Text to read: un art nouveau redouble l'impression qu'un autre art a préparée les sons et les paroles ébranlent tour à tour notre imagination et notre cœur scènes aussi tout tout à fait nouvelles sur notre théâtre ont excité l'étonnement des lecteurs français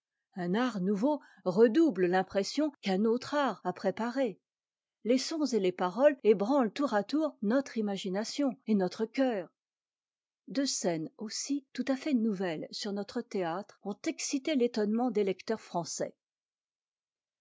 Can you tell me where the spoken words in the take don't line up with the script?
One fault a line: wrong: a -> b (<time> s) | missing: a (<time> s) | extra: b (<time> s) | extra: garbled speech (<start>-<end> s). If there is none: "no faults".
extra: deux (10.5 s)
missing: tout (11.8 s)